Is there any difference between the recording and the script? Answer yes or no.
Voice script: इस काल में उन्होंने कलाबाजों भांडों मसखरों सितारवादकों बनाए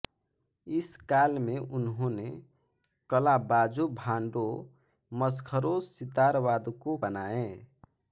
no